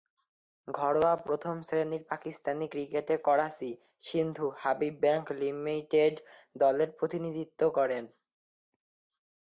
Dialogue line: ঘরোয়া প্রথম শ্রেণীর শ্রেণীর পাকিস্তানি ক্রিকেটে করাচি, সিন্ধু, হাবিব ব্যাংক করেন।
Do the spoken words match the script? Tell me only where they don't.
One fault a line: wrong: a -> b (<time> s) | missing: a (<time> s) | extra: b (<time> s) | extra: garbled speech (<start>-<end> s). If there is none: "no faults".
missing: শ্রেণীর (2.0 s)
extra: লিমিটেড দলের প্রতিনিধিত্ব (5.4 s)